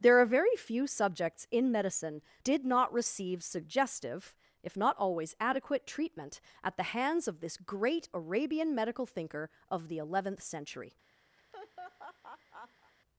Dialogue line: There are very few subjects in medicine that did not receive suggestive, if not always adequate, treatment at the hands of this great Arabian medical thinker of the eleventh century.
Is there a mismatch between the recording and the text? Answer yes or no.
yes